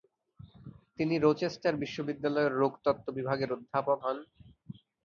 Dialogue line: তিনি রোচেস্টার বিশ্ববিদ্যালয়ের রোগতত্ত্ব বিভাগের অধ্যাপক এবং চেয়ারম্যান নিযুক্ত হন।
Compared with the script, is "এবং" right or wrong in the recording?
wrong